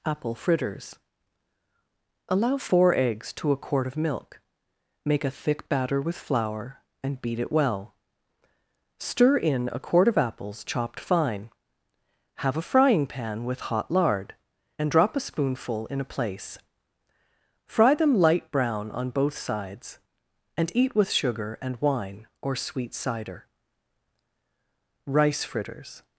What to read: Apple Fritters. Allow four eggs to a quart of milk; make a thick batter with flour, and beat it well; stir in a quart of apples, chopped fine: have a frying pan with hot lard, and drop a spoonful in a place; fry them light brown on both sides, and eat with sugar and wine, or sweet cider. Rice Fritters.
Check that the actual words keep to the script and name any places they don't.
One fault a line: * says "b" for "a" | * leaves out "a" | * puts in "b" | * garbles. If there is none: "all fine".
all fine